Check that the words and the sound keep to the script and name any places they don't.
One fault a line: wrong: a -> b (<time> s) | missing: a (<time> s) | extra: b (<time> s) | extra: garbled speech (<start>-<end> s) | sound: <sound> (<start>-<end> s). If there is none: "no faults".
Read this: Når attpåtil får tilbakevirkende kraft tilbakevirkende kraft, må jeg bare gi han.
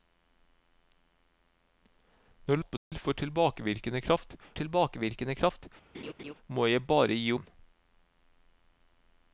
sound: dropout (2.8-2.9 s)
sound: laugh (5.9-6.3 s)